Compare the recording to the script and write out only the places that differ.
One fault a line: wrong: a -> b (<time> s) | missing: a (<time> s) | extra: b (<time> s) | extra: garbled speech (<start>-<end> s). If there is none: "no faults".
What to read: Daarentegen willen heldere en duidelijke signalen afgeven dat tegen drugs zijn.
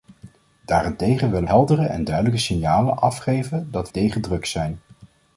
no faults